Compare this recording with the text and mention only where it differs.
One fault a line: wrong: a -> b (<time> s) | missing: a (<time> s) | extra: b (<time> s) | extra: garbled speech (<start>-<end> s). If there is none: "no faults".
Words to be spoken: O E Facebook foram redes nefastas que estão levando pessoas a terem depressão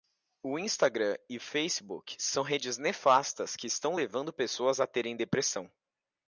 extra: Instagram (0.6 s)
wrong: foram -> são (2.2 s)